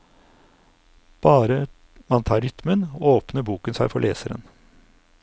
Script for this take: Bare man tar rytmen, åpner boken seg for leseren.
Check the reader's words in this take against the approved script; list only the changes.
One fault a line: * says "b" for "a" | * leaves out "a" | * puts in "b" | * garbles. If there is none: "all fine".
all fine